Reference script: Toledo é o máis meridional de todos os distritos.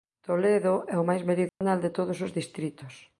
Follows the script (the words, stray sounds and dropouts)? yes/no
no